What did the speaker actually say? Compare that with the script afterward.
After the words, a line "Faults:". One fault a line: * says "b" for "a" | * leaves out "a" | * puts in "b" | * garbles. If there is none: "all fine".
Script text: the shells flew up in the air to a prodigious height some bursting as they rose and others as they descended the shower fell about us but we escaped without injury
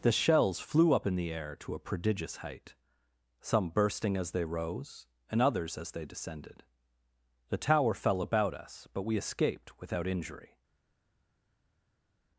the shells flew up in the air to a prodigious height some bursting as they rose and others as they descended the tower fell about us but we escaped without injury
Faults:
* says "tower" for "shower"